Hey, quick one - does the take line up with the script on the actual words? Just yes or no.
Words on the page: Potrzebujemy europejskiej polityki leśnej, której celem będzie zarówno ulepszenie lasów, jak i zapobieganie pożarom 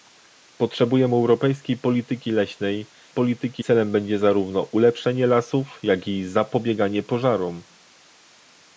no